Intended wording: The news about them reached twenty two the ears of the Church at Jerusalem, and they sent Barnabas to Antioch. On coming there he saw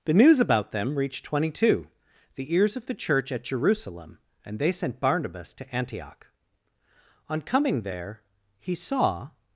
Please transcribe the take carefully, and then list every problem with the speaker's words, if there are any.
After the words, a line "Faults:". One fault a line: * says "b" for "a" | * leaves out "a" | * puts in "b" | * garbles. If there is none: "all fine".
The news about them reached twenty two the ears of the Church at Jerusalem, and they sent Barnabas to Antioch. On coming there he saw
Faults:
all fine